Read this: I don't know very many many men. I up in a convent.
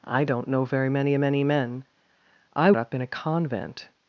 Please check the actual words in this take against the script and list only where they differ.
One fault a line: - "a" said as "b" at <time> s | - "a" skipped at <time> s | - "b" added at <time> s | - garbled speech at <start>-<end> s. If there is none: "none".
none